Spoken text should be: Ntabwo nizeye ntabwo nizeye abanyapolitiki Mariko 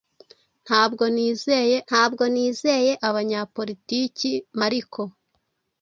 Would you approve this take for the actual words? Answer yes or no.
yes